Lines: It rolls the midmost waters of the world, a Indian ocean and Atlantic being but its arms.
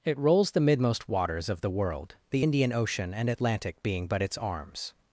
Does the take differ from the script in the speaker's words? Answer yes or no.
yes